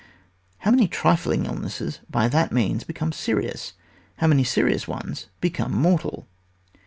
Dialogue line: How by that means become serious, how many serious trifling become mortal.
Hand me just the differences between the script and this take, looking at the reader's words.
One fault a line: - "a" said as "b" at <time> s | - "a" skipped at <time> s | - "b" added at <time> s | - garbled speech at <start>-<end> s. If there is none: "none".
- "many trifling illnesses" added at 0.7 s
- "trifling" said as "ones" at 4.9 s